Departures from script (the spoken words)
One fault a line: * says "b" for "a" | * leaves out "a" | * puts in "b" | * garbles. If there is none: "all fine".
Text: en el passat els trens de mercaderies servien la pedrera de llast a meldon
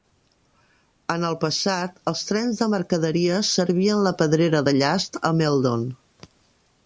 all fine